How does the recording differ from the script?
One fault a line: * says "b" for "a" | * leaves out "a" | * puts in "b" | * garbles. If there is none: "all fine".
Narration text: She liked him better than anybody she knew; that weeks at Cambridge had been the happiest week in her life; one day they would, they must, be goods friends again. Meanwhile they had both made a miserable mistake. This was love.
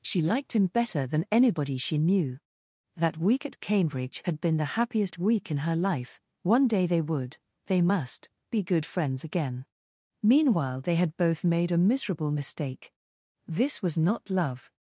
* says "week" for "weeks"
* says "good" for "goods"
* puts in "not"